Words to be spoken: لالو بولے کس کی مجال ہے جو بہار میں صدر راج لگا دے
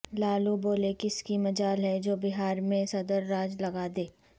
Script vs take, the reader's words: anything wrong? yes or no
no